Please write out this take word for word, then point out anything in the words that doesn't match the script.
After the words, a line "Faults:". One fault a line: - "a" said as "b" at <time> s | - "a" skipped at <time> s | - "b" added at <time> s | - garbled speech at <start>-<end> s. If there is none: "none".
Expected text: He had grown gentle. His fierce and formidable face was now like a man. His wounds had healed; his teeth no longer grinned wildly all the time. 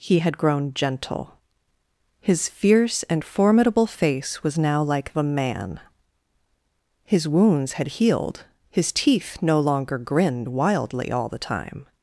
He had grown gentle. His fierce and formidable face was now like a man. His wounds had healed; his teeth no longer grinned wildly all the time.
Faults:
none